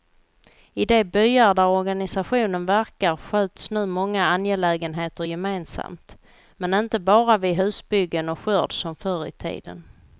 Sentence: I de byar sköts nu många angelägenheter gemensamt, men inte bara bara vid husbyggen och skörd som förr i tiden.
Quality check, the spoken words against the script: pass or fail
fail